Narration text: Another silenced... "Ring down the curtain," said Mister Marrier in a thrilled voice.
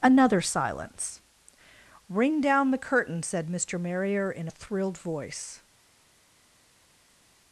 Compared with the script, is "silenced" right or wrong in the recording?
wrong